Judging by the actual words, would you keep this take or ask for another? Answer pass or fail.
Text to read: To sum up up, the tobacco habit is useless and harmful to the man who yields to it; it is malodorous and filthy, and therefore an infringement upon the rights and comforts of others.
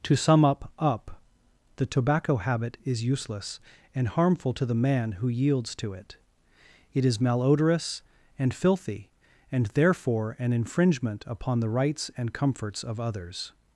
pass